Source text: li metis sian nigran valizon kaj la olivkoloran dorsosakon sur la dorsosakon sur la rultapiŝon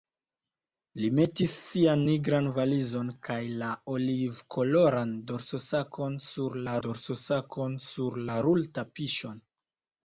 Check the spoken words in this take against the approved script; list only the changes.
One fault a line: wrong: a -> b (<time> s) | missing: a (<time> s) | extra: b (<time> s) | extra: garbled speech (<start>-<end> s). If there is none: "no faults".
no faults